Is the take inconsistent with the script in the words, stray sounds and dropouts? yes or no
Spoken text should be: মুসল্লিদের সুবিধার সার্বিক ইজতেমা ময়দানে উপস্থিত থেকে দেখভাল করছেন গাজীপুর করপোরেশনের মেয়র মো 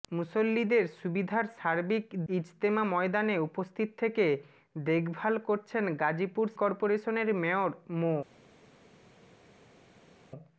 no